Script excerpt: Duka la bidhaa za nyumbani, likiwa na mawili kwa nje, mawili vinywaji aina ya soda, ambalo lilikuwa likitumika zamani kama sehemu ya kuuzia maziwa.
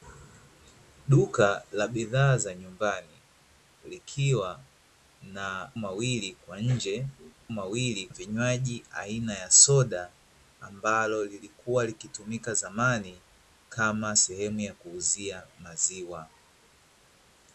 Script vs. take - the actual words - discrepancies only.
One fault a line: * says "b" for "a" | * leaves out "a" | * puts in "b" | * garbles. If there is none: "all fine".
all fine